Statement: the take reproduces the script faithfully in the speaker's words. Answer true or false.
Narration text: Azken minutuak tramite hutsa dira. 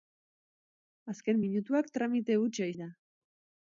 true